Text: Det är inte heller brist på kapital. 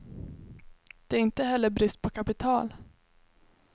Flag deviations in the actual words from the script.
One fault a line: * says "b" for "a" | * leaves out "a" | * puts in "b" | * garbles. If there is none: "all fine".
all fine